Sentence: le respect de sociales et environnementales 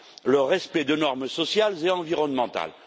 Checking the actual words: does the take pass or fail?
fail